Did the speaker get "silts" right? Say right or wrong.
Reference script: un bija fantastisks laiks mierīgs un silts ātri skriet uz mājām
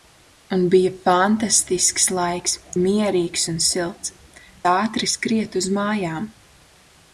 right